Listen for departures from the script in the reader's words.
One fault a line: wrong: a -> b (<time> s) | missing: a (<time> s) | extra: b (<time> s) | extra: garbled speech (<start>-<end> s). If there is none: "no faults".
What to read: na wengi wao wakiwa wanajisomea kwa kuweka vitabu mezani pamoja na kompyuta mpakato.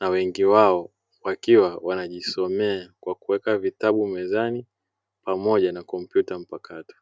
no faults